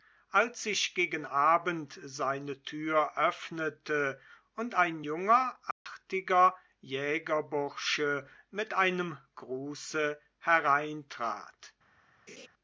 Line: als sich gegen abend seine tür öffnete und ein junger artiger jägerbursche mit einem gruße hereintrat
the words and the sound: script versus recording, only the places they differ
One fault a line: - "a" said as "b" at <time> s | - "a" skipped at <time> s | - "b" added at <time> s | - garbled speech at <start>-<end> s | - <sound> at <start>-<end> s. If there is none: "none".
- dropout at 5.7-5.9 s
- laugh at 12.3-12.5 s